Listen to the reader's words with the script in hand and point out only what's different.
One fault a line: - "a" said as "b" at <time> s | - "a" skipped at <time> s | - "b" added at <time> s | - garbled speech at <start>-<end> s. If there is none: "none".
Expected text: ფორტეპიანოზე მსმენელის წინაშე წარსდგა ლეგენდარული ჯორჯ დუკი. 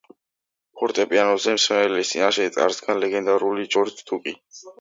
none